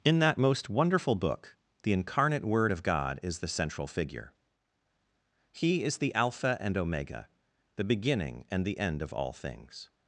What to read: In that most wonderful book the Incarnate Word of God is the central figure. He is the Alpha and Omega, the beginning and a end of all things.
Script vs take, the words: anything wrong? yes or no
yes